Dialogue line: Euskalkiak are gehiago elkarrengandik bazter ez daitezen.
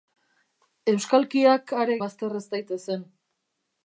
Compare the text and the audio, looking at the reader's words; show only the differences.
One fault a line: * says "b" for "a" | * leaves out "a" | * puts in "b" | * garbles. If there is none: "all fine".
* leaves out "gehiago elkarrengandik"